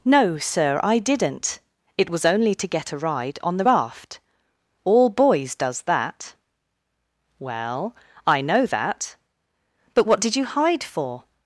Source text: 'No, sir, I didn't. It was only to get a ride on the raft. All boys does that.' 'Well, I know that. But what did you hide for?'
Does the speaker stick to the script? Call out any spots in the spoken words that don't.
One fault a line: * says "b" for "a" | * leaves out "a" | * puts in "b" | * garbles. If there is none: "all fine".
all fine